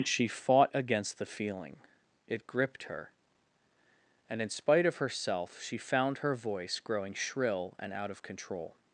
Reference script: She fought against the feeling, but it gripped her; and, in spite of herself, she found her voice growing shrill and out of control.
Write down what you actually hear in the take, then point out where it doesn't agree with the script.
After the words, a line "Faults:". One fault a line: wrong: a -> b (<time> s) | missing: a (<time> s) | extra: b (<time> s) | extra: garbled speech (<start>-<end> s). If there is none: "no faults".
She fought against the feeling, it gripped her; and, in spite of herself, she found her voice growing shrill and out of control.
Faults:
missing: but (1.8 s)